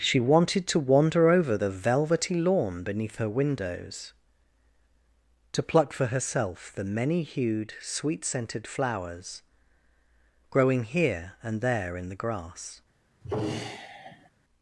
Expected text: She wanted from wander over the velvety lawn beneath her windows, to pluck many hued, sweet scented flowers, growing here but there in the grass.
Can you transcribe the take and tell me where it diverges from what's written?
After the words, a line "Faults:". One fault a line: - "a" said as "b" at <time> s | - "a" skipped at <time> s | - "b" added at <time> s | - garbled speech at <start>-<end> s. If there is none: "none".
She wanted to wander over the velvety lawn beneath her windows, to pluck for herself the many hued, sweet scented flowers, growing here and there in the grass.
Faults:
- "from" said as "to" at 0.7 s
- "for herself the" added at 5.9 s
- "but" said as "and" at 11.4 s